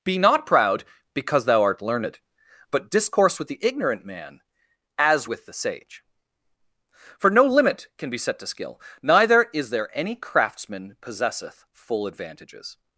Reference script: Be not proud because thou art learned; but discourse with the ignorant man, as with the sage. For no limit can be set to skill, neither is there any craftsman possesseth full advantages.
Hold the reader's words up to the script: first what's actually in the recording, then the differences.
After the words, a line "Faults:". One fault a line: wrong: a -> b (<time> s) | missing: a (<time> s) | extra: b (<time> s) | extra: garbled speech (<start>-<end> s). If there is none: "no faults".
Be not proud because thou art learned; but discourse with the ignorant man, as with the sage. For no limit can be set to skill, neither is there any craftsman possesseth full advantages.
Faults:
no faults